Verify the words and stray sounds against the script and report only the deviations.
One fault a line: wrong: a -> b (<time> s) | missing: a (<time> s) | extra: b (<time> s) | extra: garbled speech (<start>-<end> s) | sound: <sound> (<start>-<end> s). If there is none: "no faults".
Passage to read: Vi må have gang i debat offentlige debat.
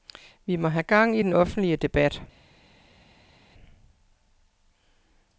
wrong: debat -> den (1.2 s)